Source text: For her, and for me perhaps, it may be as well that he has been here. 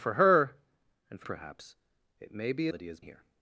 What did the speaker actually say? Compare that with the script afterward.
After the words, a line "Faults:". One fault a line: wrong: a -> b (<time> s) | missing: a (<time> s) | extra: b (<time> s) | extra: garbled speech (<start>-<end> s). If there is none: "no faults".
For her, and for perhaps, it may be that he has here.
Faults:
missing: me (1.3 s)
missing: as well (2.7 s)
missing: been (3.0 s)